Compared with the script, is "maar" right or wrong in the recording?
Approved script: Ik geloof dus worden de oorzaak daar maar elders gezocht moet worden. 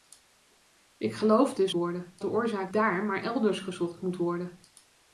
right